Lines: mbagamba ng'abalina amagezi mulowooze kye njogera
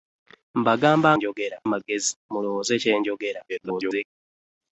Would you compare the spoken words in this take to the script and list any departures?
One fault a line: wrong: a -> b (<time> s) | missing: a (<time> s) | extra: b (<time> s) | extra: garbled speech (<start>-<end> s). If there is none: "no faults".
wrong: ng'abalina -> njogera (1.2 s)
extra: garbled speech (3.5-4.1 s)